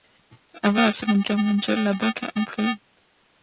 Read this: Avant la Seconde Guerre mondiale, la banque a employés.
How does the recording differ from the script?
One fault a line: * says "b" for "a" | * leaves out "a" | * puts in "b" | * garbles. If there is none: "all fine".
all fine